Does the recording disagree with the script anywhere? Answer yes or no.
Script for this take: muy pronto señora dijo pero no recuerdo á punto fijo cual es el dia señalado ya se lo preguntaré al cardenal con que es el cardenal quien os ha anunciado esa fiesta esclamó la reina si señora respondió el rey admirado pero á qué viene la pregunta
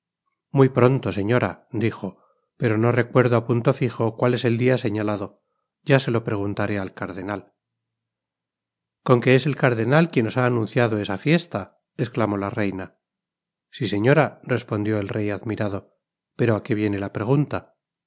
no